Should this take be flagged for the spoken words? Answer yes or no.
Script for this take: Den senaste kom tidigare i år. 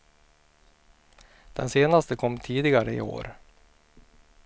no